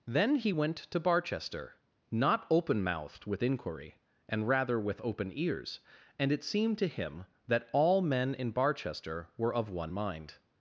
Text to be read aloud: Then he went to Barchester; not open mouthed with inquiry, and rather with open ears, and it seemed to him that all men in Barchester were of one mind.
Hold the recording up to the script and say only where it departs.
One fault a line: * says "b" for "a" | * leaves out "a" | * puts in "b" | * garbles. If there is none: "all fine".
all fine